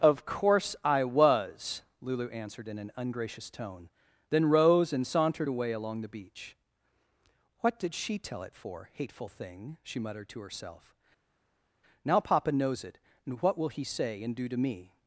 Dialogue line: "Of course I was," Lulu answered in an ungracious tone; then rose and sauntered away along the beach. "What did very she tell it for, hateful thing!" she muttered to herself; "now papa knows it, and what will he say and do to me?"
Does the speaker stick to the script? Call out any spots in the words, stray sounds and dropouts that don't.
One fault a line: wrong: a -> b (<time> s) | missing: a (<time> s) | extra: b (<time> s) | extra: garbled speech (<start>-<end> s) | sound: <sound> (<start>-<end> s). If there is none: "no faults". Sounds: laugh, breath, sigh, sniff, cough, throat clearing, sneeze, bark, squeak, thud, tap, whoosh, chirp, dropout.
missing: very (7.9 s)